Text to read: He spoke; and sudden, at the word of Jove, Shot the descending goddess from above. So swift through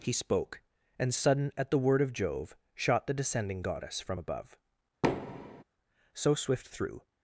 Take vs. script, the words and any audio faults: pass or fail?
fail